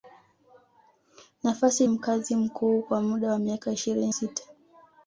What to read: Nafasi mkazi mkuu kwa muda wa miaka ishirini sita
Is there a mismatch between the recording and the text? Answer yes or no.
no